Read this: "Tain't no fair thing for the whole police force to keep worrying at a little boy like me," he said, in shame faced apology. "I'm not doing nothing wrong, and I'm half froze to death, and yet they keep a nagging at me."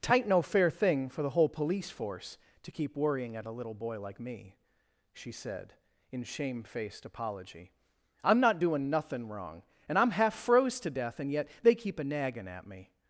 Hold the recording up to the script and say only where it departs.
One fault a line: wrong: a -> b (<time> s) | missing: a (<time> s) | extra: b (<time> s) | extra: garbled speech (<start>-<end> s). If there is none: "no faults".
wrong: he -> she (5.1 s)